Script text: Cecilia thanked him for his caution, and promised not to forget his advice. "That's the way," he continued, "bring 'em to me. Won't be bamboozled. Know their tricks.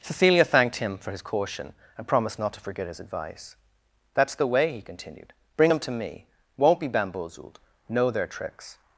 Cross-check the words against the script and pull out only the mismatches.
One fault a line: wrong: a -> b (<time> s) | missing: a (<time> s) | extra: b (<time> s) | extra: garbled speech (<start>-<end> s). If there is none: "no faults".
no faults